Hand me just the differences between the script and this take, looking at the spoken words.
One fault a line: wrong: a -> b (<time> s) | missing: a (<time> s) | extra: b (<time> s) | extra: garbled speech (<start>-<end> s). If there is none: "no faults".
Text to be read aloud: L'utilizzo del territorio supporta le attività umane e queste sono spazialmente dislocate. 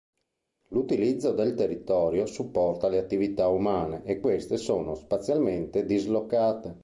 no faults